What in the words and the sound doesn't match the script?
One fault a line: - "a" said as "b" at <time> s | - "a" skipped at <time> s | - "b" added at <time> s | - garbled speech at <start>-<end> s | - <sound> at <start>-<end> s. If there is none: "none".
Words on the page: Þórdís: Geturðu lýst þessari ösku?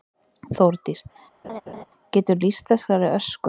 - laugh at 1.4-1.8 s